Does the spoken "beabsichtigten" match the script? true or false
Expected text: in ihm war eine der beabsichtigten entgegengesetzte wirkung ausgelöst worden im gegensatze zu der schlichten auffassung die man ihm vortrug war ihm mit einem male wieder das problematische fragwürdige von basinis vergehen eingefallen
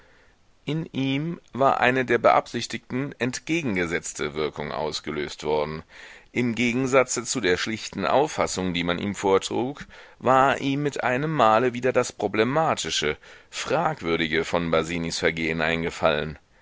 true